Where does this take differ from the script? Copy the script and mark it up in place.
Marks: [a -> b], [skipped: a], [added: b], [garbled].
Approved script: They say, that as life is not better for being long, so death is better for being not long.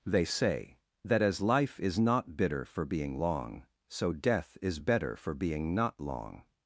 They say, that as life is not [better -> bitter] for being long, so death is better for being not long.